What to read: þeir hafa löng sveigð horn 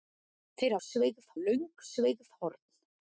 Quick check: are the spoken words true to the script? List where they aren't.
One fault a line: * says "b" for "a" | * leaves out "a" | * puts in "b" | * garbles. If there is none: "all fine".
* says "sveigð" for "hafa"